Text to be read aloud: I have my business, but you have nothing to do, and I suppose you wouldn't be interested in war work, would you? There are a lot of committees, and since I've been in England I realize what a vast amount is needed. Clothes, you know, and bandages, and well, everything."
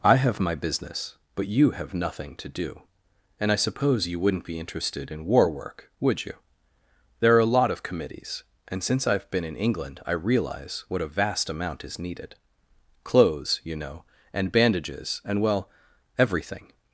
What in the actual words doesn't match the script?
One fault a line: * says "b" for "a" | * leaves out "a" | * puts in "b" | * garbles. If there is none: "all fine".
all fine